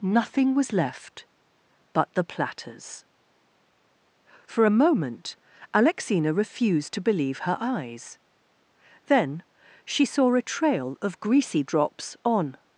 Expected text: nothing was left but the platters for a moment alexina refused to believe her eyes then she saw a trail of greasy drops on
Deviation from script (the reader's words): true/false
false